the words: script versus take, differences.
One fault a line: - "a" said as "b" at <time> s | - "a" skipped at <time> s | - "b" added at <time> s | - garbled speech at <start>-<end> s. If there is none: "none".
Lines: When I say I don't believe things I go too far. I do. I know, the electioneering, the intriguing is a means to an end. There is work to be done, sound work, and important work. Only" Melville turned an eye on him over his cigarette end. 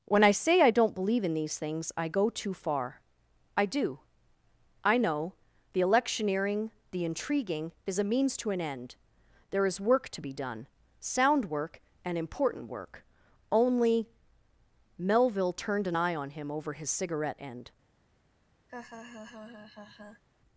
- "in these" added at 1.2 s